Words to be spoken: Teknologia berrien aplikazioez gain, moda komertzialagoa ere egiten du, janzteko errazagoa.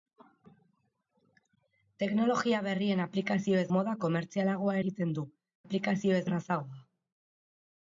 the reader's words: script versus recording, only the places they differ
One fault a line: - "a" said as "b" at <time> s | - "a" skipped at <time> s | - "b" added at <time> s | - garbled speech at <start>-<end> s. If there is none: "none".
- "gain" skipped at 3.7 s
- "ere" skipped at 4.8 s
- "janzteko" said as "aplikazioez" at 5.6 s